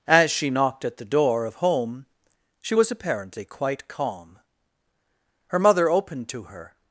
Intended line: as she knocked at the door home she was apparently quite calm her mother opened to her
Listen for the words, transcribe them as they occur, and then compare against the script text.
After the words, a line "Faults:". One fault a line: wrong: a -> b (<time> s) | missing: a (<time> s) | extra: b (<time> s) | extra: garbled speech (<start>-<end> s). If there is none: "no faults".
as she knocked at the door of home she was apparently quite calm her mother opened to her
Faults:
extra: of (1.4 s)